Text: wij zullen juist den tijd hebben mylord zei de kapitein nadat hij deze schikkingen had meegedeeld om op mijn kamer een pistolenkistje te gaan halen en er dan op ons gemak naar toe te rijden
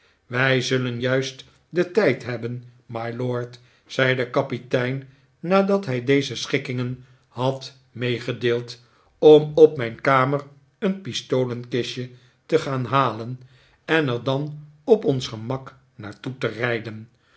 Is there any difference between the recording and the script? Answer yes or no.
no